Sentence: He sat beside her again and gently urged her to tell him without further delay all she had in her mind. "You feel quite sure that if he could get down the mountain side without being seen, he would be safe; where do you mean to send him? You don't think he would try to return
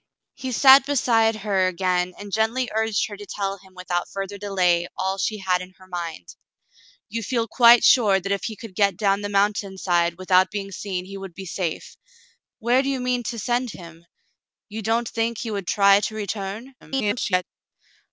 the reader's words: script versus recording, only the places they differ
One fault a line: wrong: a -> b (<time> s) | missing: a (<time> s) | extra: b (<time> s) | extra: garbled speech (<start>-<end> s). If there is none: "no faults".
extra: garbled speech (16.8-17.4 s)